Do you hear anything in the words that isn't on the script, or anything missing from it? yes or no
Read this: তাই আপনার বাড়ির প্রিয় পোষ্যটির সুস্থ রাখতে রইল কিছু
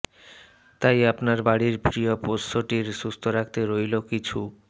no